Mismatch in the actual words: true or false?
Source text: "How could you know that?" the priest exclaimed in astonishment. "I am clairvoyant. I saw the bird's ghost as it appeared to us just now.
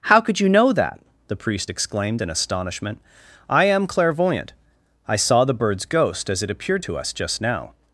false